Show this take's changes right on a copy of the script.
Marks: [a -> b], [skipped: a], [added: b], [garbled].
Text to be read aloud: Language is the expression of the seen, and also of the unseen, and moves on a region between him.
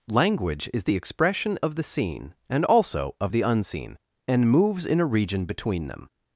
Language is the expression of the seen, and also of the unseen, and moves [on -> in] a region between [him. -> them]